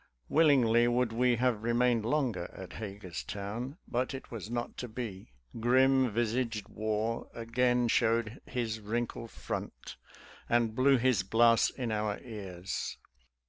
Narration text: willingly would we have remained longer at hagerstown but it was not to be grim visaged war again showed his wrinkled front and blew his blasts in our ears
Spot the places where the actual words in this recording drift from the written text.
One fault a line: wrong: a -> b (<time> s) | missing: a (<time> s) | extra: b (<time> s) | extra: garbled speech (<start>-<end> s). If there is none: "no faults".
no faults